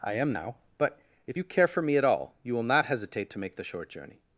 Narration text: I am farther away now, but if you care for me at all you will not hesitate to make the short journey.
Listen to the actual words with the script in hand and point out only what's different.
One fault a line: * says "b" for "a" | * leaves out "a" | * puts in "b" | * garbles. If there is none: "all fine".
* leaves out "farther away"